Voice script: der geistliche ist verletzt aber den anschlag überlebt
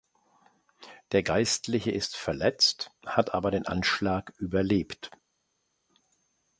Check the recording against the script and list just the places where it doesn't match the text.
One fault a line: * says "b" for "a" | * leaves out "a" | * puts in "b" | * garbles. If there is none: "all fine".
* puts in "hat"